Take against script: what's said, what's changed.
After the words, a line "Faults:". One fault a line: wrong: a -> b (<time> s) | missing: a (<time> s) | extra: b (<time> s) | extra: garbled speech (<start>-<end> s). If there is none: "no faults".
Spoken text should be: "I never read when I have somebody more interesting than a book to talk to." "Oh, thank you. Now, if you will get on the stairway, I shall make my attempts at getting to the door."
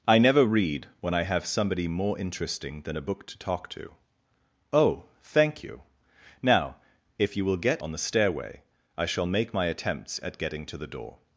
"I never read when I have somebody more interesting than a book to talk to." "Oh, thank you. Now, if you will get on the stairway, I shall make my attempts at getting to the door."
Faults:
no faults